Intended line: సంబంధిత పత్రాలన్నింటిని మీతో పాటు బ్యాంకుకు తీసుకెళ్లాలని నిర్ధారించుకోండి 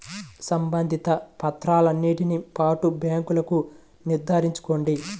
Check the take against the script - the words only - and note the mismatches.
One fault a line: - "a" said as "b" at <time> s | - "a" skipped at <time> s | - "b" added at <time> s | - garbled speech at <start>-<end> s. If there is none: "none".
- "మీతో" skipped at 2.4 s
- "తీసుకెళ్లాలని" skipped at 3.6 s